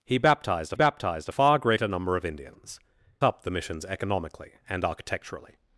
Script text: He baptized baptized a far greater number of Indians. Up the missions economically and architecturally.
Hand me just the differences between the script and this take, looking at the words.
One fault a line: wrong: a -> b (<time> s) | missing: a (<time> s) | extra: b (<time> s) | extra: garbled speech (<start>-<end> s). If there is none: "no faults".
no faults